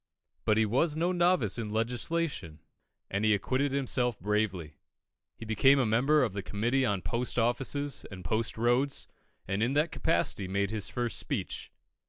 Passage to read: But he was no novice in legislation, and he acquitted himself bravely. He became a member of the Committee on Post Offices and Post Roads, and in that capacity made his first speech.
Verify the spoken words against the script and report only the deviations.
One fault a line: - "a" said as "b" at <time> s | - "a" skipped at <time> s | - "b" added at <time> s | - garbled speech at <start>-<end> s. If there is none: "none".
none